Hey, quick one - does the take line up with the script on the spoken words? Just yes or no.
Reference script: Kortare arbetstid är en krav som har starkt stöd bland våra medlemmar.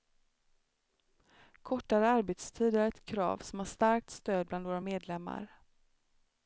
no